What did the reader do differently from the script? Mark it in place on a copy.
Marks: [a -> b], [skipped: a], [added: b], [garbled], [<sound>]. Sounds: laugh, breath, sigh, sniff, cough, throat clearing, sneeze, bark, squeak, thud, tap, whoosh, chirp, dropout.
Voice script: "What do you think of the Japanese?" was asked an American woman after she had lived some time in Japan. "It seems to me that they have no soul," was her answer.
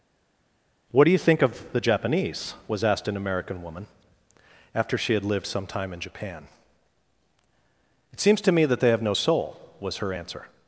"What do you think of the Japanese?" was asked an American woman after she had lived some time in Japan. "It seems to me that they have no soul," was her answer.